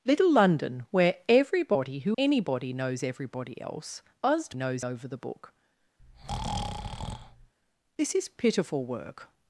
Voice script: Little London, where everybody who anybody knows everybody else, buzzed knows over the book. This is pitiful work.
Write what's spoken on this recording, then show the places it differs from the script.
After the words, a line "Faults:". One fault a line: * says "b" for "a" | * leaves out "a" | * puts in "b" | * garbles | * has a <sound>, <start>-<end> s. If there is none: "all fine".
Little London, where everybody who anybody knows everybody else, buzzed knows over the book. This is pitiful work.
Faults:
* has a breath, 6.0-7.5 s